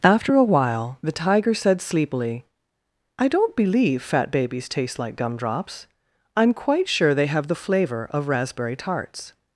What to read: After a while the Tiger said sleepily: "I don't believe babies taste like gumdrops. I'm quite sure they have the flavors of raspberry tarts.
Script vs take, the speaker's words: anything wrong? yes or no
yes